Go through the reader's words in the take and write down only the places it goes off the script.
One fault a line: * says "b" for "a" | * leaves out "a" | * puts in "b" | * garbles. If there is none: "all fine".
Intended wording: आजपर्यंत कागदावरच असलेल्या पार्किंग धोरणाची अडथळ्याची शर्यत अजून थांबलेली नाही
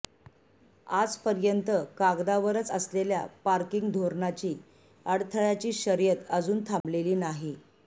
all fine